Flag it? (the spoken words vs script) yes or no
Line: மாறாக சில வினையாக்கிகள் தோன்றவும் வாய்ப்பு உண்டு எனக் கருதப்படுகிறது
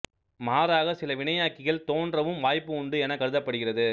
no